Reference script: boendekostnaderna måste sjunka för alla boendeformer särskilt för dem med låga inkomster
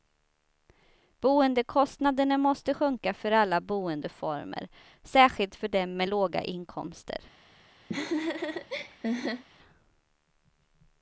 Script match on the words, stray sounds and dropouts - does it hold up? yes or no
no